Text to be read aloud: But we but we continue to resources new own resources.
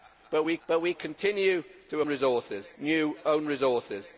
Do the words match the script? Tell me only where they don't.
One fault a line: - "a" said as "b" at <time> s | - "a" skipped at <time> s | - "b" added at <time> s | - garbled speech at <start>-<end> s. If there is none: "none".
none